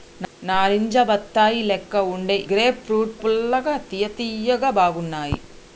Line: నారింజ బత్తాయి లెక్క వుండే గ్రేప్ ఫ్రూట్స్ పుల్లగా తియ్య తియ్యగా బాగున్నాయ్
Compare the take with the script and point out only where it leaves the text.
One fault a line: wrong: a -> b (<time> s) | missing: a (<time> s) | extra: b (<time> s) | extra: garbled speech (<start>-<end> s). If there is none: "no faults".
no faults